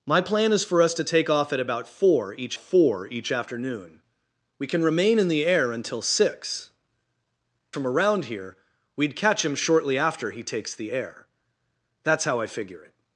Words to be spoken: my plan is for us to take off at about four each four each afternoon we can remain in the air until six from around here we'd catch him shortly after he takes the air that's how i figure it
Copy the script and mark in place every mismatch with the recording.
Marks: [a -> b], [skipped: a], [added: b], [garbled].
my plan is for us to take off at about four each four each afternoon we can remain in the air until six from around here we'd catch him shortly after he takes the air that's how i figure it